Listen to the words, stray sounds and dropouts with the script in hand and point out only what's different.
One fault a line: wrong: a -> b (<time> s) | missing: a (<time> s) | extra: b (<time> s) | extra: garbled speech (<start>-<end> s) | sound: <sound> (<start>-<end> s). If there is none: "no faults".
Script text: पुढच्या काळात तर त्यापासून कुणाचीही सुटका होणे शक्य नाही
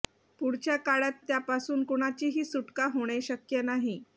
missing: तर (1.2 s)